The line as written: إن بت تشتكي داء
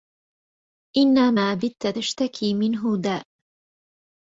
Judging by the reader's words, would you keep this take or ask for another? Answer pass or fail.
fail